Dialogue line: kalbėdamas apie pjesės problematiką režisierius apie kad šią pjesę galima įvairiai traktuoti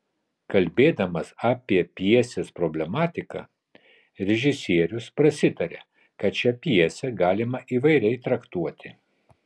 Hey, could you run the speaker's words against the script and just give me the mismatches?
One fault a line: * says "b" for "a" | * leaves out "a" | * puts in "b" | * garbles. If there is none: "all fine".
* says "prasitaria" for "apie"